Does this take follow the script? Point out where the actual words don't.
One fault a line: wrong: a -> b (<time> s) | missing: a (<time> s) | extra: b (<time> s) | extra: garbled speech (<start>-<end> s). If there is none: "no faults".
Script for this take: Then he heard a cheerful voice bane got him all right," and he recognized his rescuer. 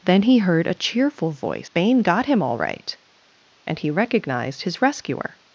no faults